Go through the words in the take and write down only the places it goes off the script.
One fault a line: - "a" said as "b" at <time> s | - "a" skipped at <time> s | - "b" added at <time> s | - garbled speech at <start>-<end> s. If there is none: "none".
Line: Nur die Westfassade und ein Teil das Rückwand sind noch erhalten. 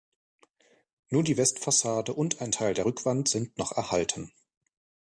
- "das" said as "der" at 2.7 s